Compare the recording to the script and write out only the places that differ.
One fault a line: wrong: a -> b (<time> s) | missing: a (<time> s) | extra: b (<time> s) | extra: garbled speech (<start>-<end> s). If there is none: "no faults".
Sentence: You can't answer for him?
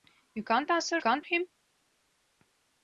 wrong: for -> can't (1.0 s)